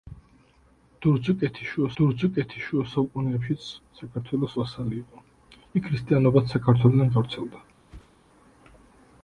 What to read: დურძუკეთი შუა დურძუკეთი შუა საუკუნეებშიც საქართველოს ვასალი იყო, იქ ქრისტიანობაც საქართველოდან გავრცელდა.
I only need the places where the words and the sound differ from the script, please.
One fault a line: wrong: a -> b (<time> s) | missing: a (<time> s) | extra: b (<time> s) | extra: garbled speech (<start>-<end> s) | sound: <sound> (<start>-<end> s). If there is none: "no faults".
sound: whoosh (7.9-8.2 s)